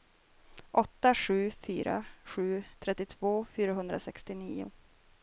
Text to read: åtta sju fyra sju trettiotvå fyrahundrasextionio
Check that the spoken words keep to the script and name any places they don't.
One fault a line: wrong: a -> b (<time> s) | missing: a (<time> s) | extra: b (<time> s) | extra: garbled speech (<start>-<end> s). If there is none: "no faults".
no faults